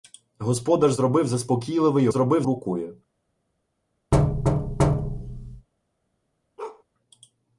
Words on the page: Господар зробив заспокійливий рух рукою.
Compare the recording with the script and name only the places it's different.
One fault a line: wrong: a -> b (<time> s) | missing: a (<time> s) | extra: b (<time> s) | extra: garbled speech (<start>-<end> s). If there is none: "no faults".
wrong: рух -> зробив (2.1 s)